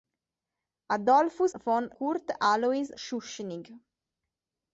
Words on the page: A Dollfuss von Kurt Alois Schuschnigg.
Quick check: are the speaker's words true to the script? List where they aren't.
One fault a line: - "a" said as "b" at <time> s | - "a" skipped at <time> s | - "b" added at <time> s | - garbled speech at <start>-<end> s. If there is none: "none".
none